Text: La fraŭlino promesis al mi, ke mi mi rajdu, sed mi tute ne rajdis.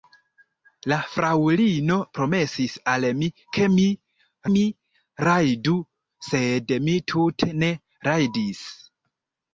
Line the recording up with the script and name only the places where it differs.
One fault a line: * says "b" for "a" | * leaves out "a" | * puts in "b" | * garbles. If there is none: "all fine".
all fine